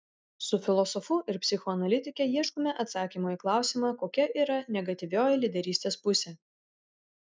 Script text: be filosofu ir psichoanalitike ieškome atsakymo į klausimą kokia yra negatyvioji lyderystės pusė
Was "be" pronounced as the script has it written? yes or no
no